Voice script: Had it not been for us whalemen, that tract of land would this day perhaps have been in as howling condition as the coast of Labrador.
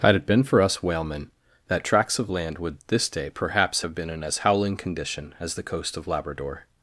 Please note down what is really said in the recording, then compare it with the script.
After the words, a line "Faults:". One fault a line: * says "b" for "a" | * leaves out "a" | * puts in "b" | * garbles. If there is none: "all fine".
Had it been for us whalemen, that tracts of land would this day perhaps have been in as howling condition as the coast of Labrador.
Faults:
* leaves out "not"
* says "tracts" for "tract"